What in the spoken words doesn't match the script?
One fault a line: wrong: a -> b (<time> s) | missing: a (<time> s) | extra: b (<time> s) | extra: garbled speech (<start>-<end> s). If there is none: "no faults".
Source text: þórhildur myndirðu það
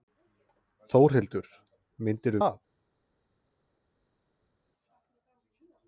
no faults